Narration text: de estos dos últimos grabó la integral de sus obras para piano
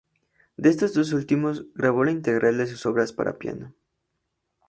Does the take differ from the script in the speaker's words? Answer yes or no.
no